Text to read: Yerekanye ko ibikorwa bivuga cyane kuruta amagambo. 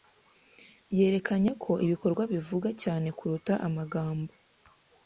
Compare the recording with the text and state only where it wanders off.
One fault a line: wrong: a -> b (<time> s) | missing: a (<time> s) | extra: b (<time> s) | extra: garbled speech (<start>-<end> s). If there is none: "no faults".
no faults